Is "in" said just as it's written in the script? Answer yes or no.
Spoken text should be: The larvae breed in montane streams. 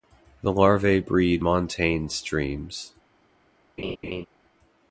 no